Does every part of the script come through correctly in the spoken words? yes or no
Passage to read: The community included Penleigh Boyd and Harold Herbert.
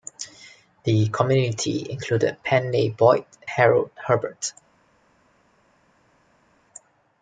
no